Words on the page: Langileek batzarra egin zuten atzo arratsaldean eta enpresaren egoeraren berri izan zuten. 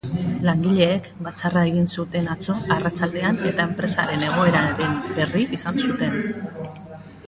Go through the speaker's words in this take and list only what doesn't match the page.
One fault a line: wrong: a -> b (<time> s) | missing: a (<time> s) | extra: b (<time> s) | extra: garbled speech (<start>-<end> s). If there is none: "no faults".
no faults